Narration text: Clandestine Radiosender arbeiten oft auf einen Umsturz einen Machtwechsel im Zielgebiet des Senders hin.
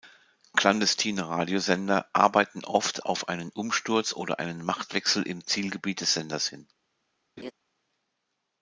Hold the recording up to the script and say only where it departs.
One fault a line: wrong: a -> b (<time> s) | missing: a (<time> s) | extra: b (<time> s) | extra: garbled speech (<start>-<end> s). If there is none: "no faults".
extra: oder (4.1 s)